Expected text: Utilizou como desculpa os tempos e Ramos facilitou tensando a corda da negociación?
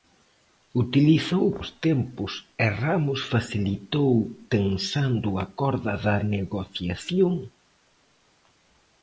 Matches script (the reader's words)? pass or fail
fail